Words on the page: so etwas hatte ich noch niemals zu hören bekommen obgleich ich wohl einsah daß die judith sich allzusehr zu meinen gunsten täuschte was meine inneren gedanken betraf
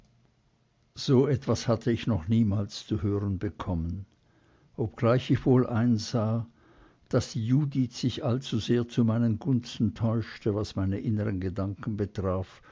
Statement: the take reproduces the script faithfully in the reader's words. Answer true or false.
true